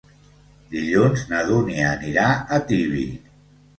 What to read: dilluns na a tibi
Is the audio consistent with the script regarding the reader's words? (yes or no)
no